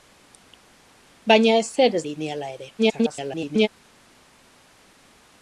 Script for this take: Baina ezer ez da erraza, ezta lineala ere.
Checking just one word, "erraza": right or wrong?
wrong